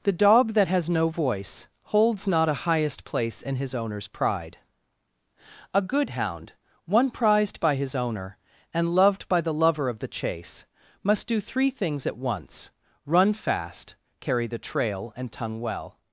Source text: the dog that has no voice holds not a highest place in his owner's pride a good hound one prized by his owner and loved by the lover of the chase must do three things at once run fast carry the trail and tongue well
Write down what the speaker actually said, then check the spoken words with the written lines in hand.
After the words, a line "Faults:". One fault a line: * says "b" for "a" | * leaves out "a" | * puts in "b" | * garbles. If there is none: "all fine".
the dog that has no voice holds not a highest place in his owner's pride a good hound one prized by his owner and loved by the lover of the chase must do three things at once run fast carry the trail and tongue well
Faults:
all fine